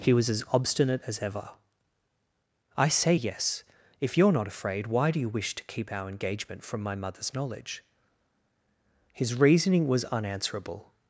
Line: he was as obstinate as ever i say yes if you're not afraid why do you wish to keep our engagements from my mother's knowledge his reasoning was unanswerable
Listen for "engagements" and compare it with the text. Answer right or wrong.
wrong